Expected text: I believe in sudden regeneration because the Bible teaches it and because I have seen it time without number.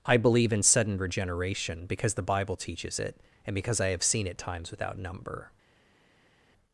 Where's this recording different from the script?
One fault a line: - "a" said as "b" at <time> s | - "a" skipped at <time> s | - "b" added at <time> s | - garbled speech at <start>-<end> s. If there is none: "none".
- "time" said as "times" at 4.4 s